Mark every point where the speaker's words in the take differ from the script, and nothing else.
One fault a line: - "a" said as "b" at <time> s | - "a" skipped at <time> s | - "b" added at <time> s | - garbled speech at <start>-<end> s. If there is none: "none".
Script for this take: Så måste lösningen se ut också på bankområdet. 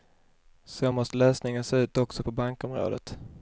none